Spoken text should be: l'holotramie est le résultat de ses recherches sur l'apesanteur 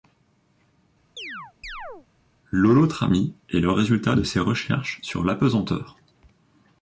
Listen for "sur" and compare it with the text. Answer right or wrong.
right